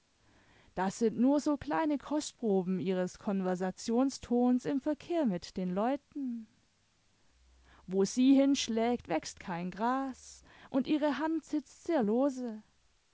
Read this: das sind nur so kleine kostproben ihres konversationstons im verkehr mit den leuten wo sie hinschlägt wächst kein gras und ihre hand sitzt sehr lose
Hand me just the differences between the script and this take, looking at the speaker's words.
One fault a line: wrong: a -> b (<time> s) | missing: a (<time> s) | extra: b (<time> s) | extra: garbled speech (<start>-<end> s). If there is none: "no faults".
no faults